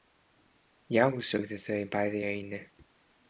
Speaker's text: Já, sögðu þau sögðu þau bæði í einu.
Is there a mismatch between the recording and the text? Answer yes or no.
yes